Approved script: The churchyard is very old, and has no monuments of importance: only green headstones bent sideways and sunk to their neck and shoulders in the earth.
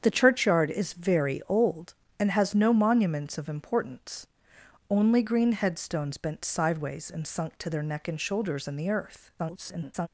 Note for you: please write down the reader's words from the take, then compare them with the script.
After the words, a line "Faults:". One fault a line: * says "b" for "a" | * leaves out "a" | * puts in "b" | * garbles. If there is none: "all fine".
The churchyard is very old, and has no monuments of importance: only green headstones bent sideways and sunk to their neck and shoulders in the earth. [garbled]
Faults:
* garbles